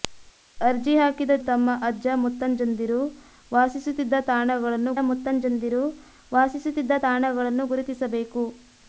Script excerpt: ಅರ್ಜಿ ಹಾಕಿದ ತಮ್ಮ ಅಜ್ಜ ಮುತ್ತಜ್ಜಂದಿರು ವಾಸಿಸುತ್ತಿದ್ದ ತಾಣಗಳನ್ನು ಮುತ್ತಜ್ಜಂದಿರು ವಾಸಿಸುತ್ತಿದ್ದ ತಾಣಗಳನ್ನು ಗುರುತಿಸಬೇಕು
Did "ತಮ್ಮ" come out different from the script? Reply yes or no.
no